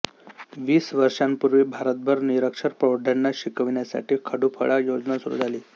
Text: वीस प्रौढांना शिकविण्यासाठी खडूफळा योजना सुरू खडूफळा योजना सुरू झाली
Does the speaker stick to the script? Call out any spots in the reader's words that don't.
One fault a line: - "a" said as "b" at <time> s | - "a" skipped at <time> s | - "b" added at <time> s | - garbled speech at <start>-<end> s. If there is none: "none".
- "प्रौढांना शिकविण्यासाठी खडूफळा योजना सुरू" said as "वर्षांपूर्वी भारतभर निरक्षर प्रौढांना शिकविण्यासाठी" at 0.9 s